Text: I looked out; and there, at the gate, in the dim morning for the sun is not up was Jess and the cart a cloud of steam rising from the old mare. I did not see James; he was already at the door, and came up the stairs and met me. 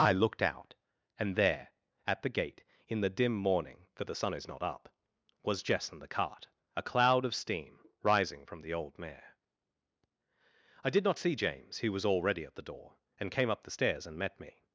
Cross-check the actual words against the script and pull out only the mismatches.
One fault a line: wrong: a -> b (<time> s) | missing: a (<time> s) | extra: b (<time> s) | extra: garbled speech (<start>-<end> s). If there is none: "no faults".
no faults